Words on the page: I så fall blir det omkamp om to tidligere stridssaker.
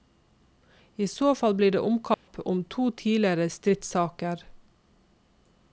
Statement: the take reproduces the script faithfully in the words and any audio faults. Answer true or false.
false